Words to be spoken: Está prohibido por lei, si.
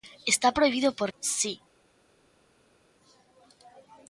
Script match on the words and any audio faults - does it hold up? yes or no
no